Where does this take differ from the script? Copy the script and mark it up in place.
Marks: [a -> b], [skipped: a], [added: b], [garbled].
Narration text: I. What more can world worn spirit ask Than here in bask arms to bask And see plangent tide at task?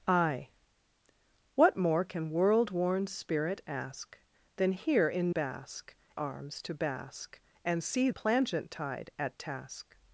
I. What more can world worn spirit ask Than here in bask arms to bask And see plangent tide at task?